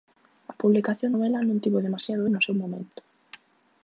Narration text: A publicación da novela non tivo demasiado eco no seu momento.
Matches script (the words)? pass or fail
fail